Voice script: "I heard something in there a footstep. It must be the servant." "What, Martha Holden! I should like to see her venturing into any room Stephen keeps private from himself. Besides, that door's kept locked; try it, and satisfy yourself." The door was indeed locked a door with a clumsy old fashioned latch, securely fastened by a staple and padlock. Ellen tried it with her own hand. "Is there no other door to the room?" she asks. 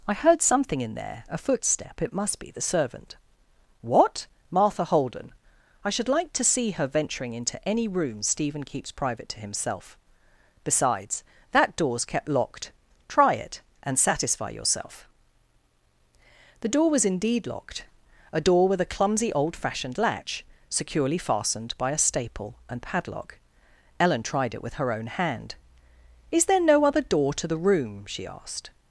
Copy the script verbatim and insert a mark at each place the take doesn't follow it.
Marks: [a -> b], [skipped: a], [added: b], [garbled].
"I heard something in there a footstep. It must be the servant." "What, Martha Holden! I should like to see her venturing into any room Stephen keeps private [from -> to] himself. Besides, that door's kept locked; try it, and satisfy yourself." The door was indeed locked a door with a clumsy old fashioned latch, securely fastened by a staple and padlock. Ellen tried it with her own hand. "Is there no other door to the room?" she [asks. -> asked]